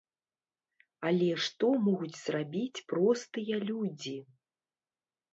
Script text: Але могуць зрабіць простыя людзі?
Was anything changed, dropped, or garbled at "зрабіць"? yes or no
no